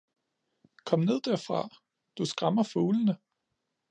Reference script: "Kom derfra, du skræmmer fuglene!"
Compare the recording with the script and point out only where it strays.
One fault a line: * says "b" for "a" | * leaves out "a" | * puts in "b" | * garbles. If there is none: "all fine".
* puts in "ned"